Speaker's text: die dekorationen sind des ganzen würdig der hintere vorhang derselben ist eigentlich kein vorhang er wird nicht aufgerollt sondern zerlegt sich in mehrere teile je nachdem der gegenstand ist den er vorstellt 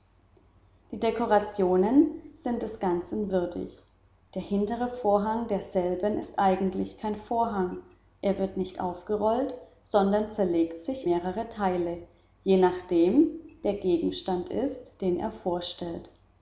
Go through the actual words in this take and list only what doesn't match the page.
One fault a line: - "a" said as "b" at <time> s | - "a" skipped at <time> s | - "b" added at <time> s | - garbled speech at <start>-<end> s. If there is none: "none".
- "in" skipped at 11.1 s